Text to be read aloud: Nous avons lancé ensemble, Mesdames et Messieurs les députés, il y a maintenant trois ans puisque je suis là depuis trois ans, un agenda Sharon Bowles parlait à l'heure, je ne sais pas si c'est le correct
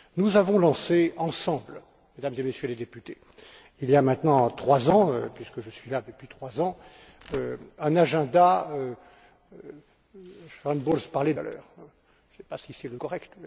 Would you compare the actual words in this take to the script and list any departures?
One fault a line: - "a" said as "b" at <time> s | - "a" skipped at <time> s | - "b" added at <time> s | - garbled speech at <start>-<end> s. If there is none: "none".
none